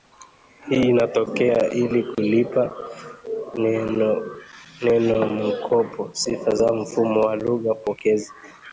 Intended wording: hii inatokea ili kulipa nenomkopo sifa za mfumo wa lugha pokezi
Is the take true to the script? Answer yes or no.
yes